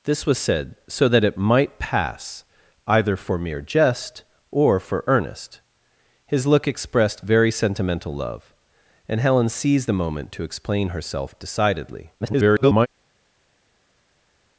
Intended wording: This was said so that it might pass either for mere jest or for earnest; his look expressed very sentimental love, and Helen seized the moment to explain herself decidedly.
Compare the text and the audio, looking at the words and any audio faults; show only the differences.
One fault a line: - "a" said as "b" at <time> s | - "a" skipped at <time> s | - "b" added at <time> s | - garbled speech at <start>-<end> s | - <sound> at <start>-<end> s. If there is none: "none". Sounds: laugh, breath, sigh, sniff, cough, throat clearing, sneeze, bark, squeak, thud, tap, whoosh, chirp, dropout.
- garbled speech at 12.2-12.9 s